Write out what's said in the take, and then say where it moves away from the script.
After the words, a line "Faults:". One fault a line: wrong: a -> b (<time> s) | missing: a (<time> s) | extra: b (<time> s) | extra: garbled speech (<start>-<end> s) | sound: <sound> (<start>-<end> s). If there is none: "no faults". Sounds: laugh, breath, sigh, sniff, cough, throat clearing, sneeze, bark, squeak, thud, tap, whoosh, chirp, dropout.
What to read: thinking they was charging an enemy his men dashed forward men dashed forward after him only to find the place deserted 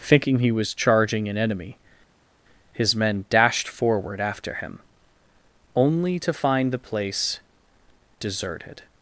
thinking he was charging an enemy his men dashed forward after him only to find the place deserted
Faults:
wrong: they -> he (0.4 s)
missing: men dashed forward (4.2 s)